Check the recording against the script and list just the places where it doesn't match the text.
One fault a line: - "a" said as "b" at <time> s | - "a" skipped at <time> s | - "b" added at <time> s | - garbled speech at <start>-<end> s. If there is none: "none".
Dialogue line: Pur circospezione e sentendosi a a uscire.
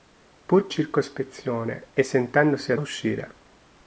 none